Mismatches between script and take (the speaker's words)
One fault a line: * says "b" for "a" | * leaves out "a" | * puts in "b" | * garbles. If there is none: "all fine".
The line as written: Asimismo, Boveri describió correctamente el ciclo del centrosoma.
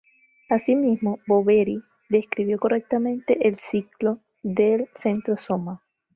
all fine